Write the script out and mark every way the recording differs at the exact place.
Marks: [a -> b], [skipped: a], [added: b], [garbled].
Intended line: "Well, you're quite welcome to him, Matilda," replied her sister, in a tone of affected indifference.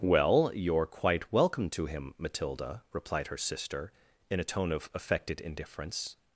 "Well, you're quite welcome to him, Matilda," replied her sister, in a tone of affected indifference.